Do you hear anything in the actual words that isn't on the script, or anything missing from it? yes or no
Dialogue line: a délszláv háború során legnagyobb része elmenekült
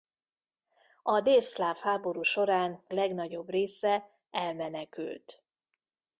no